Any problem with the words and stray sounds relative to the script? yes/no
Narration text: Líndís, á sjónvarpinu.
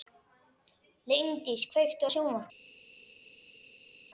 yes